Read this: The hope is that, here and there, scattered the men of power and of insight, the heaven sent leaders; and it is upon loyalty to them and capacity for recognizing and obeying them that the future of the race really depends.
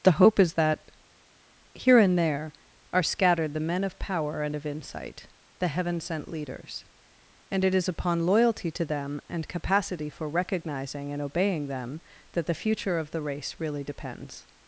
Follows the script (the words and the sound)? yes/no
no